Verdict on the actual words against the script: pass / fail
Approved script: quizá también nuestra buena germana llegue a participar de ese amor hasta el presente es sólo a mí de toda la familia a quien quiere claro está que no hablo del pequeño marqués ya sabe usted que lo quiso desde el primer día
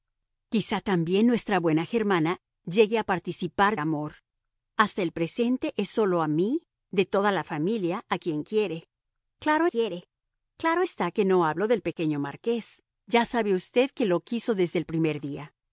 fail